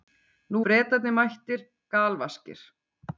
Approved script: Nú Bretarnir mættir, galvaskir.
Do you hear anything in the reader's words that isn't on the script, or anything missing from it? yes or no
no